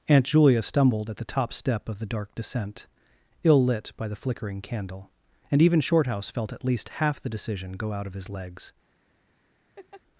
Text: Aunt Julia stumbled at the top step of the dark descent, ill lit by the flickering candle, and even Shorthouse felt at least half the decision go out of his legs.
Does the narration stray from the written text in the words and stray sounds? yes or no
yes